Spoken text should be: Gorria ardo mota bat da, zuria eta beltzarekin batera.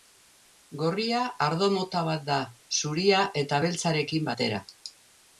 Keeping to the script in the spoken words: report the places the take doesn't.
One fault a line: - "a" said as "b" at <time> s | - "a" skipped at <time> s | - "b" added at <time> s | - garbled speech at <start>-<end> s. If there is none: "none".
none